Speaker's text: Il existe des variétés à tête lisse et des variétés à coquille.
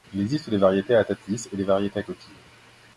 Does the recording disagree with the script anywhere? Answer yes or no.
no